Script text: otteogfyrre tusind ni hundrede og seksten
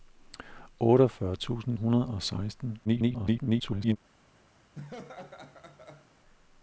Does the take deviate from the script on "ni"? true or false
true